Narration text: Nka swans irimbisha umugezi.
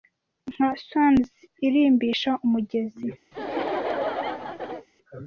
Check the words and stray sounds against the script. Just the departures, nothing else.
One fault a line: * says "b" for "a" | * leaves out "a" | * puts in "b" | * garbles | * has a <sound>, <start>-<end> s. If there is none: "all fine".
* has a laugh, 3.3-4.9 s